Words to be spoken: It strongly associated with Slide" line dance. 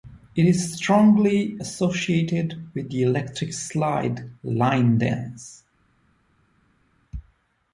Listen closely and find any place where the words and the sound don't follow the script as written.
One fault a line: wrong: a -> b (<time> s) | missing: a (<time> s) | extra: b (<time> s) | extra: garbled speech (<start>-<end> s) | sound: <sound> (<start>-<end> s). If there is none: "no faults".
extra: is (0.5 s)
extra: the Electric (2.9 s)